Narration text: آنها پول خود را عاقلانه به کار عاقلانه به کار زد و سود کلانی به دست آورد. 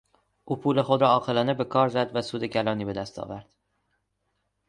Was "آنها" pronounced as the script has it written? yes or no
no